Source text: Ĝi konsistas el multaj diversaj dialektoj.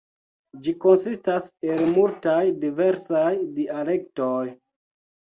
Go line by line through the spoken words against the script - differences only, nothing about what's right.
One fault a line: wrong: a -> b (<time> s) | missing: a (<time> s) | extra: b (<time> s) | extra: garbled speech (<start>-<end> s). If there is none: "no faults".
no faults